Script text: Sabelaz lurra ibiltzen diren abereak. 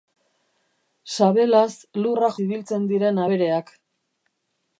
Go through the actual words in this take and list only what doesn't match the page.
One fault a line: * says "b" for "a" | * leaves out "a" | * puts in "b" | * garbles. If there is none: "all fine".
all fine